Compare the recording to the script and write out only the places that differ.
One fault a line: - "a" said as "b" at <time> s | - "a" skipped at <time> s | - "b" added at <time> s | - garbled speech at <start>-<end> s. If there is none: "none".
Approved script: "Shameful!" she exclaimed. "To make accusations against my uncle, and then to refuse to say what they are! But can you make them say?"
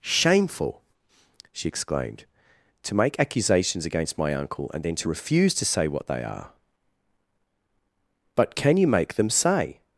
none